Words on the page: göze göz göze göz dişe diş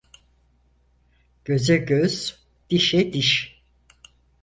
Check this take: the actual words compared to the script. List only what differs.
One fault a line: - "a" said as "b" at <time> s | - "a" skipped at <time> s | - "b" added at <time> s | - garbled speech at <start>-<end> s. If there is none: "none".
- "göze göz" skipped at 2.4 s